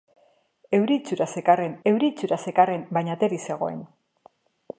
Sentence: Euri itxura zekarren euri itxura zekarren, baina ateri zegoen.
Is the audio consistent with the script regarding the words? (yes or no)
yes